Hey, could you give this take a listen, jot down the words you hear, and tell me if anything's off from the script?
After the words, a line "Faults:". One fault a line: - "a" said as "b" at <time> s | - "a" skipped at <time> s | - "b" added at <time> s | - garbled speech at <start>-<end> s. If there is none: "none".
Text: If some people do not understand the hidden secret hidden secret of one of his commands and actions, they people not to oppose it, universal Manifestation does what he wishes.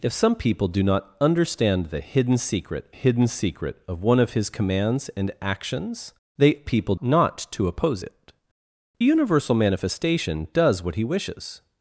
If some people do not understand the hidden secret hidden secret of one of his commands and actions, they people not to oppose it, universal Manifestation does what he wishes.
Faults:
none